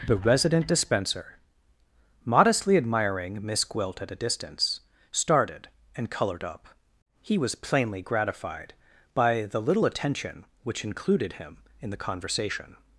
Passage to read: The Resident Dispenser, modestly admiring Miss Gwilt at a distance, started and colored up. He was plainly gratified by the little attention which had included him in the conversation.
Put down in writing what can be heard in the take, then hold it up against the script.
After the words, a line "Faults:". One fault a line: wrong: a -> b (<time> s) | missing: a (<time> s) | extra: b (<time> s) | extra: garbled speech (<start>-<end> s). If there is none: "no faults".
The Resident Dispenser, modestly admiring Miss Gwilt at a distance, started and colored up. He was plainly gratified by the little attention which included him in the conversation.
Faults:
missing: had (10.9 s)